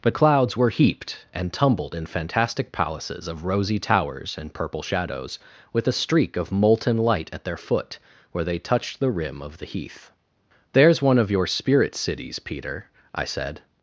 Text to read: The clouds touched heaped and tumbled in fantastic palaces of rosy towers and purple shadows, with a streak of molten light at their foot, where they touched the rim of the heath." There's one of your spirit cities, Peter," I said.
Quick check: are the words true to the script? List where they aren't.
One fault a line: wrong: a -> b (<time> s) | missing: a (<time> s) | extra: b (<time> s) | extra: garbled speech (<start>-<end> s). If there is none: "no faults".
wrong: touched -> were (0.6 s)